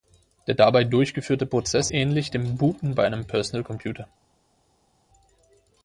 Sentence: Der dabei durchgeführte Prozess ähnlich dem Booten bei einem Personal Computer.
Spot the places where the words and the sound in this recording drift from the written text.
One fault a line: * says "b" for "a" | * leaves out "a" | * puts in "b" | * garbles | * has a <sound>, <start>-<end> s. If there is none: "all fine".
all fine